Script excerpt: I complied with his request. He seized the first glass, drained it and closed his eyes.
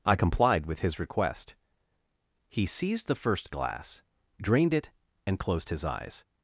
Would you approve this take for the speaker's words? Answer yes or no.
yes